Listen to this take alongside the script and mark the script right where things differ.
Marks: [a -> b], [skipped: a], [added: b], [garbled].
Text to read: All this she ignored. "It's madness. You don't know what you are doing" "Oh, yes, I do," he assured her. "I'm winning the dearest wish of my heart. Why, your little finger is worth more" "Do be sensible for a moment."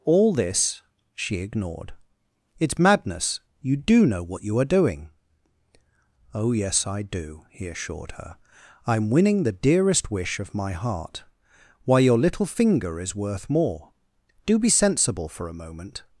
All this she ignored. "It's madness. You [don't -> do] know what you are doing" "Oh, yes, I do," he assured her. "I'm winning the dearest wish of my heart. Why, your little finger is worth more" "Do be sensible for a moment."